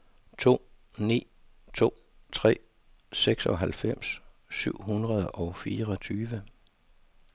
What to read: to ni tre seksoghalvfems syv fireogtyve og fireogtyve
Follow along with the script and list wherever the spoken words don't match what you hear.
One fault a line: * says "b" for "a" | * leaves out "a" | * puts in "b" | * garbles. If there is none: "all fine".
* puts in "to"
* says "hundrede" for "fireogtyve"